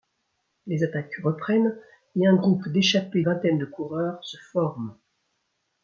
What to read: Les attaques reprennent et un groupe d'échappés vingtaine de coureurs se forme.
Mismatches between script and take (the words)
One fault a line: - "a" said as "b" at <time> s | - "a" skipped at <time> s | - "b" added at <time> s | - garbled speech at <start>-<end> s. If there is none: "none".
none